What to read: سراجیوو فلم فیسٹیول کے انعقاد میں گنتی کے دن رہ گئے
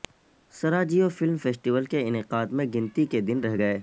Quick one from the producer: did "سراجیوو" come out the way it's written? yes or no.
yes